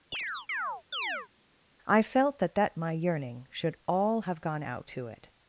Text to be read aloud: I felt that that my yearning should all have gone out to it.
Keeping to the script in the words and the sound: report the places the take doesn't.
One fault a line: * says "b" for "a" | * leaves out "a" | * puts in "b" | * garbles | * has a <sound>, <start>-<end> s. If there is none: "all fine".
* has a chirp, 0.1-1.3 s